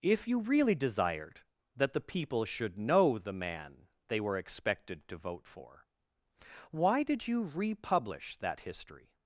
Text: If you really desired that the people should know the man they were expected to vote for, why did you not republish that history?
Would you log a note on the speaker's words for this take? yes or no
yes